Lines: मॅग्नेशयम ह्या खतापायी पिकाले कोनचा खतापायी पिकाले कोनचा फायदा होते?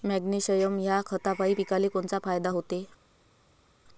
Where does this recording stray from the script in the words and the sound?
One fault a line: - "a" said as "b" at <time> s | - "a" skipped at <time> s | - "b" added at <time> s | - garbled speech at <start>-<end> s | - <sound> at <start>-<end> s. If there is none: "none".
- "खतापायी पिकाले कोनचा" skipped at 2.2 s